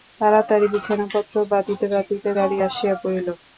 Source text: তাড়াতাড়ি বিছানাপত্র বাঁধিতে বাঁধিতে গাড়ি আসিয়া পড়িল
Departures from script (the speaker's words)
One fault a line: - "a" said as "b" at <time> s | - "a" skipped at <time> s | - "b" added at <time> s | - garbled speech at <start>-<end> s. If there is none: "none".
none